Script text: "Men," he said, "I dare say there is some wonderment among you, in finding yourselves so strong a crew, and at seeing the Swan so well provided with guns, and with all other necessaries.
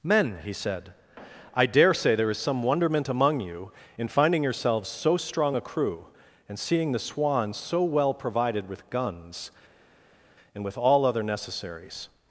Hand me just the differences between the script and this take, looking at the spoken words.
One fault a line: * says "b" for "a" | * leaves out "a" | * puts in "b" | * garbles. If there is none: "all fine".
* leaves out "at"